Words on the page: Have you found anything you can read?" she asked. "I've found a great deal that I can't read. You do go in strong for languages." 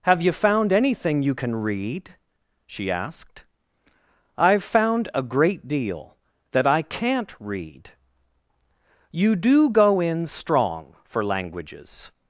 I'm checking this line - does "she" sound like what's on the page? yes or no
yes